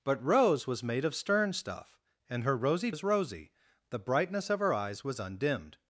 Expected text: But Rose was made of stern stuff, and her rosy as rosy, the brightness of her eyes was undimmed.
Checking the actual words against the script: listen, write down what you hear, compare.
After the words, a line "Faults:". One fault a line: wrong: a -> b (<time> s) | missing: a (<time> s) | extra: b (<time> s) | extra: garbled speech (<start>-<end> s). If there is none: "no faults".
But Rose was made of stern stuff, and her rosy as rosy, the brightness of her eyes was undimmed.
Faults:
no faults